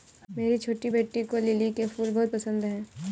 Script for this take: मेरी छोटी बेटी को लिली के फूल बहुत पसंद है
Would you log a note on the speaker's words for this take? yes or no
no